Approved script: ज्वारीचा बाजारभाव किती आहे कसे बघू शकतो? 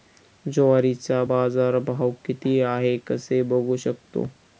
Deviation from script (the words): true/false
false